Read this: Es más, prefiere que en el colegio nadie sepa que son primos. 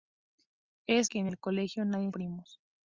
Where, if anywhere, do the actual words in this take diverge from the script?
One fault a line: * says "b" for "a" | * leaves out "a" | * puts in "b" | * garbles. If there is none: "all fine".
* leaves out "más prefiere"
* leaves out "sepa que son"